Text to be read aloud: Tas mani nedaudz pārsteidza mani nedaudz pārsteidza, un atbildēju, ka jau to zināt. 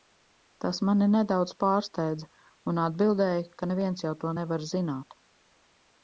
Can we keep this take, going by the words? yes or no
no